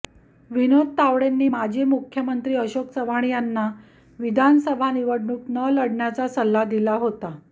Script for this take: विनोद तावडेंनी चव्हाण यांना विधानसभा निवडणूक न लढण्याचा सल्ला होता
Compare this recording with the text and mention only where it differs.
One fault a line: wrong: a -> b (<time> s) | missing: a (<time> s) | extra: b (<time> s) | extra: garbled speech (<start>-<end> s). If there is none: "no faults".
extra: माजी मुख्यमंत्री अशोक (1.5 s)
extra: दिला (6.7 s)